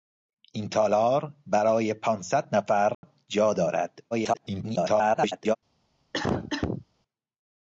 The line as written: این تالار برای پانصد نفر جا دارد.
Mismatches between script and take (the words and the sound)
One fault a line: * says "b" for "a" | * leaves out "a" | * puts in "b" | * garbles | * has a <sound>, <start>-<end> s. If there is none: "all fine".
* has a dropout, 2.9-3.0 s
* garbles
* has a cough, 6.1-6.9 s